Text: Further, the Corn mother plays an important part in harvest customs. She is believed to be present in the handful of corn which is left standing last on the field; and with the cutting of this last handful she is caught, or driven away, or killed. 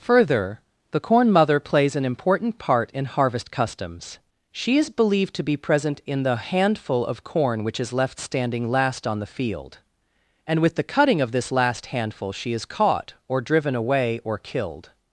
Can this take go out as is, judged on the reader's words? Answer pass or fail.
pass